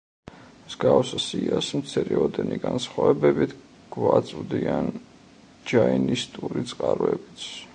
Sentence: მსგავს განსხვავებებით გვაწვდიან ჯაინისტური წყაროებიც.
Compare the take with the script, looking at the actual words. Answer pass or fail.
fail